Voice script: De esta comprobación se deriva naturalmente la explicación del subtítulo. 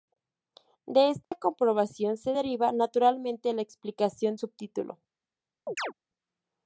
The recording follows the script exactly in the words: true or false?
false